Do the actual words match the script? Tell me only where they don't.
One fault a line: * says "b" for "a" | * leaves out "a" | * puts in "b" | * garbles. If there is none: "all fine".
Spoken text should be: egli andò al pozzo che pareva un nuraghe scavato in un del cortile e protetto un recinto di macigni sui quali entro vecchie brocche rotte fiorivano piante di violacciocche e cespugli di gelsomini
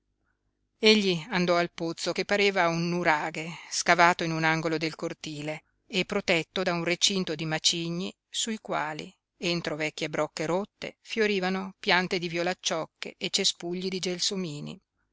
* puts in "angolo"
* puts in "da"